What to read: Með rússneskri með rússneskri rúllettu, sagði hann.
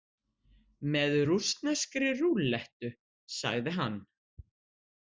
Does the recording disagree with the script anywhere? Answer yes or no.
yes